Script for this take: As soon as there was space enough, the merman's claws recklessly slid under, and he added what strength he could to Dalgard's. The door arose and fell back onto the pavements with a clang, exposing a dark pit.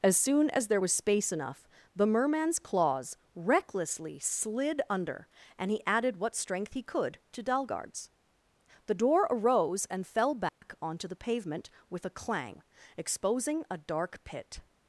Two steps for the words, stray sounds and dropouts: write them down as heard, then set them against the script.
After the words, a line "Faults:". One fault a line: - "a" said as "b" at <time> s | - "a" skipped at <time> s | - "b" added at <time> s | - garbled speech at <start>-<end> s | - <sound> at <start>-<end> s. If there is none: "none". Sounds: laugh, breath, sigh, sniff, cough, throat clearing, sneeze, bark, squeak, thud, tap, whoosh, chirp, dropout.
As soon as there was space enough, the merman's claws recklessly slid under, and he added what strength he could to Dalgard's. The door arose and fell back onto the pavement with a clang, exposing a dark pit.
Faults:
- dropout at 10.5-10.6 s
- "pavements" said as "pavement" at 11.2 s